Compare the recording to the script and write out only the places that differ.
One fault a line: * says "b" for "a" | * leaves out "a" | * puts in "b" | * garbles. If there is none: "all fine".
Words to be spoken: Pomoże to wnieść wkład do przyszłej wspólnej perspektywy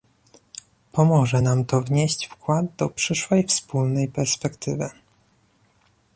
* puts in "nam"